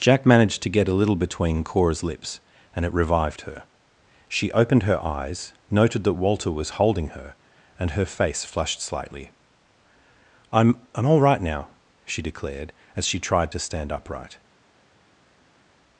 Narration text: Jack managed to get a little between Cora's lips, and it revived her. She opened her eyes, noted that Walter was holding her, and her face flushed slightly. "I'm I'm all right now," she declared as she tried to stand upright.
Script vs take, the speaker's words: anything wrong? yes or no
no